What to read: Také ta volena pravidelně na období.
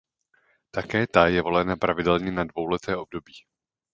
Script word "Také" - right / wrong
right